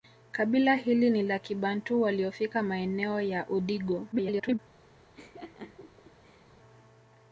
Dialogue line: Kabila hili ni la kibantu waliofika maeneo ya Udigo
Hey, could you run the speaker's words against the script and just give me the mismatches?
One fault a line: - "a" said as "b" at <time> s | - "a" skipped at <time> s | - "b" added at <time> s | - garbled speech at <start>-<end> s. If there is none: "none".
- garbled speech at 4.1-4.6 s